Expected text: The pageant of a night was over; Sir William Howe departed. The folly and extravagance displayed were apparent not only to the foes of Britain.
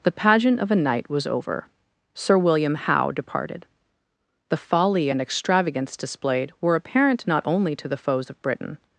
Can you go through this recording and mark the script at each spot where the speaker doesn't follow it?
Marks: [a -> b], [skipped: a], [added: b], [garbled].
The pageant of a night was over; Sir William Howe departed. The folly and extravagance displayed were apparent not only to the foes of Britain.